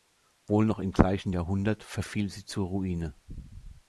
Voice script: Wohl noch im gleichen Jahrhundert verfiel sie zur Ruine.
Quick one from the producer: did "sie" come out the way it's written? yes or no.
yes